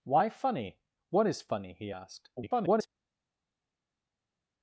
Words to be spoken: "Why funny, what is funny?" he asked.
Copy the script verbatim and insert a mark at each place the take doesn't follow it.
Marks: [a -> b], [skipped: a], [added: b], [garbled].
"Why funny, what is funny?" he asked. [garbled]